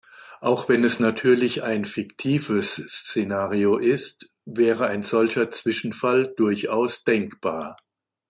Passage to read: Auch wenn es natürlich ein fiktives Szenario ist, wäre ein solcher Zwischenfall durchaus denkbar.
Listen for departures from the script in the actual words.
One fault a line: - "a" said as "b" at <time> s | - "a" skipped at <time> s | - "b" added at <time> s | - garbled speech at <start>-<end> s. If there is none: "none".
none